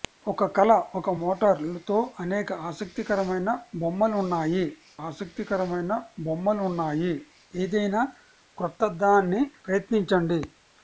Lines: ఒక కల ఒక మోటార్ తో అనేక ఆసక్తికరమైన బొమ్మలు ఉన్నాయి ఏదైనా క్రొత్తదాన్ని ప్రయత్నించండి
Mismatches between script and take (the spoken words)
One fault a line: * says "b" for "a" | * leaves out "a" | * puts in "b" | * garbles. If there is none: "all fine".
* puts in "ఆసక్తికరమైన బొమ్మలు ఉన్నాయి"